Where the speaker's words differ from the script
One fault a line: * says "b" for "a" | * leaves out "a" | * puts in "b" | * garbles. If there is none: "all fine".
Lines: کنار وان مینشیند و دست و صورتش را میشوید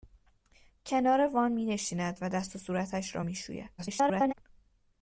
* garbles